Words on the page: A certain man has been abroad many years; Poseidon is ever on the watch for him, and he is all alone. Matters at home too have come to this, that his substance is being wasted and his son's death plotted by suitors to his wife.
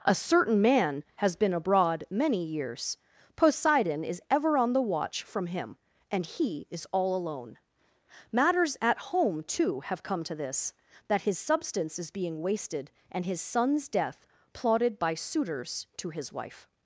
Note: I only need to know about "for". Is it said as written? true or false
false